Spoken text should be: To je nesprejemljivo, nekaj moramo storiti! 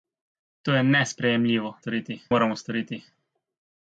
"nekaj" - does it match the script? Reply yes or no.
no